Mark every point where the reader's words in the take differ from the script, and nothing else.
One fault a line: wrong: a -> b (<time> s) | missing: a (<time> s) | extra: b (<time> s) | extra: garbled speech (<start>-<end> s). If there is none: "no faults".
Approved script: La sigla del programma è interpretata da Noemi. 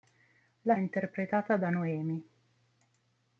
missing: sigla del programma (0.8 s)